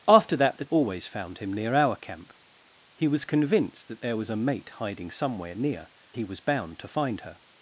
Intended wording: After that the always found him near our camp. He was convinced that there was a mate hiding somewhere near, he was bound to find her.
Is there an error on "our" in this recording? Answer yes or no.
no